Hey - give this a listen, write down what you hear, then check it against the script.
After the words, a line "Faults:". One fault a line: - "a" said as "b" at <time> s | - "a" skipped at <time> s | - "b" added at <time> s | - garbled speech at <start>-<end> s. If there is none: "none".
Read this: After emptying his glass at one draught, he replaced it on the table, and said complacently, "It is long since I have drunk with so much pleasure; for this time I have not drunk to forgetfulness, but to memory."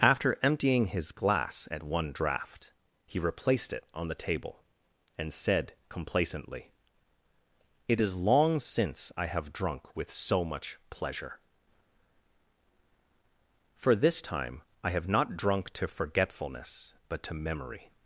After emptying his glass at one draught, he replaced it on the table, and said complacently, "It is long since I have drunk with so much pleasure; for this time I have not drunk to forgetfulness, but to memory."
Faults:
none